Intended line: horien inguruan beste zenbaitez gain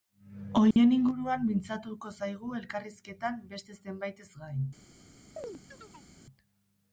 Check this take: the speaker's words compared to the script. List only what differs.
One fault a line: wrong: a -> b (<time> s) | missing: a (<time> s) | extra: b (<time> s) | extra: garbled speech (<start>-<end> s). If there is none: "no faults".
extra: mintzatuko zaigu elkarrizketan (1.5 s)